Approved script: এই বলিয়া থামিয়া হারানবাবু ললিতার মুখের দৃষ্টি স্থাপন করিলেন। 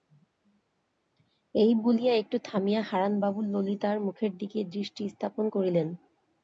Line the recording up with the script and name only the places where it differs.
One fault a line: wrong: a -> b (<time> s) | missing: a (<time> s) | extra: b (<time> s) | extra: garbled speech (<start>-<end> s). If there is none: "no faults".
extra: একটু (2.1 s)
extra: দিকে (4.4 s)